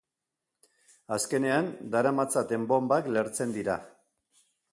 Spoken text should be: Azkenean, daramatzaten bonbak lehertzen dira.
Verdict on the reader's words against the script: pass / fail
pass